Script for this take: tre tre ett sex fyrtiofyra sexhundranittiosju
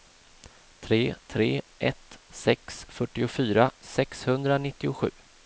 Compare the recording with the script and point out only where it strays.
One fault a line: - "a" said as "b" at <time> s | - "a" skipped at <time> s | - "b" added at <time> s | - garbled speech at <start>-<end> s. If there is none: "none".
none